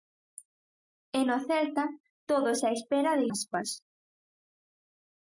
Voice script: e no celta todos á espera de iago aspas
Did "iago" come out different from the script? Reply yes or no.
yes